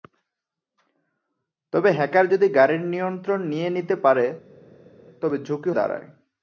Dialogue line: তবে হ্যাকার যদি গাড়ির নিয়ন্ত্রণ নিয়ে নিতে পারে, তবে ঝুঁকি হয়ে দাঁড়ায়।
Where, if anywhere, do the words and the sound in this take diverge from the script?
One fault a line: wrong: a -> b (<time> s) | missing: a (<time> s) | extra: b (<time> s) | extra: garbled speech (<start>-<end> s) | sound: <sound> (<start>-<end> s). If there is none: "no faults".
missing: হয়ে (5.7 s)